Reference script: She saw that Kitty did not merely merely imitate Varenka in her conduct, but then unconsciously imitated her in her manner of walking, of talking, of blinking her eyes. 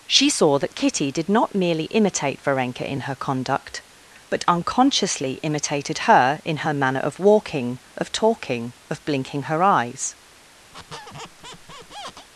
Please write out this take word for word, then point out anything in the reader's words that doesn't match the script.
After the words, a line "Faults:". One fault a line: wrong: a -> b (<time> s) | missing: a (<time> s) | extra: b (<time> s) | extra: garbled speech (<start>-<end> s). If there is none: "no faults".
She saw that Kitty did not merely imitate Varenka in her conduct, but unconsciously imitated her in her manner of walking, of talking, of blinking her eyes.
Faults:
missing: merely (1.8 s)
missing: then (4.4 s)